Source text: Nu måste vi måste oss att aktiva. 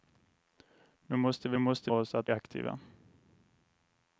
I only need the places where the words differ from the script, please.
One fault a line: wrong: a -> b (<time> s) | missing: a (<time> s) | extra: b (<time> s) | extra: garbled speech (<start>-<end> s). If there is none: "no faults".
no faults